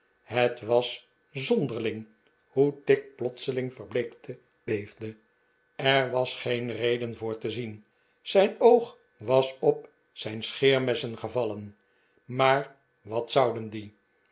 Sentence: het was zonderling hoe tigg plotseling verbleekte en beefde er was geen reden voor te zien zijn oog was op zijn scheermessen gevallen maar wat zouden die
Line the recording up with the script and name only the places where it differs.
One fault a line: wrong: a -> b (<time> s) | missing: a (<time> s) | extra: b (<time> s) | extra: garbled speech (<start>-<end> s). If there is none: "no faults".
missing: en (4.4 s)